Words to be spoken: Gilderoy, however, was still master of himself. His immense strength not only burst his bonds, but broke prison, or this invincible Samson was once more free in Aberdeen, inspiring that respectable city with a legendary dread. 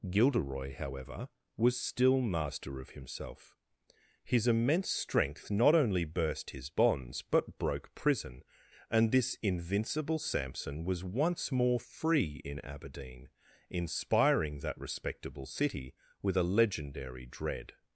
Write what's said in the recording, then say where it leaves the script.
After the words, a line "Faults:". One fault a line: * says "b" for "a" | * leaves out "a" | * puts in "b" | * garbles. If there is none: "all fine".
Gilderoy, however, was still master of himself. His immense strength not only burst his bonds, but broke prison, and this invincible Samson was once more free in Aberdeen, inspiring that respectable city with a legendary dread.
Faults:
* says "and" for "or"